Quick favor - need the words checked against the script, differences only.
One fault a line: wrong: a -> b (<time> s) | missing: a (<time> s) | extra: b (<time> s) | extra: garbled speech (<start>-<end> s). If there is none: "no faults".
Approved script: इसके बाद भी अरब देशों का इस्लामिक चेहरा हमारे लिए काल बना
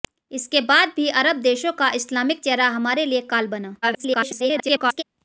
extra: garbled speech (3.8-5.0 s)